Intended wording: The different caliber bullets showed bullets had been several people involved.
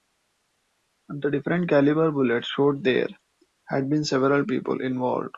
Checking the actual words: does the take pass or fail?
fail